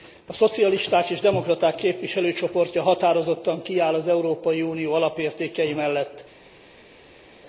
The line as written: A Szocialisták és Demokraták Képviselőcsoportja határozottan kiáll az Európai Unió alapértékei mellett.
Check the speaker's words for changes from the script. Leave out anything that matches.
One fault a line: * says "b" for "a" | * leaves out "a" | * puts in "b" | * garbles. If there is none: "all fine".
all fine